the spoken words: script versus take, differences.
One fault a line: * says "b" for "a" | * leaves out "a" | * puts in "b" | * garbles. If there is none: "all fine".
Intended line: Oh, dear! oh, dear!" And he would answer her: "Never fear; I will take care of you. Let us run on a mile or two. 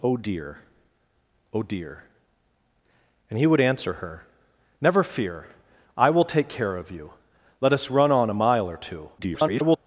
* garbles